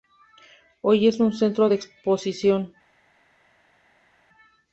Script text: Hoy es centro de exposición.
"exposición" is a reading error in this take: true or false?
false